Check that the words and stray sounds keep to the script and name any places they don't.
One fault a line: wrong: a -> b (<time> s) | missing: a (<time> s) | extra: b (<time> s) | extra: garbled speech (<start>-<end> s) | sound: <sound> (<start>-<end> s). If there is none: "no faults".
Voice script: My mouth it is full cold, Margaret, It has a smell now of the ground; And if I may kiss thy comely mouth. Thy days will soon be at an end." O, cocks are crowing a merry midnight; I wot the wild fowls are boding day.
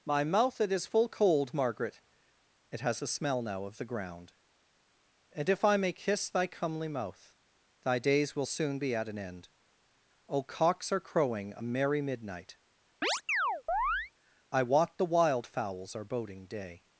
sound: chirp (13.0-14.1 s)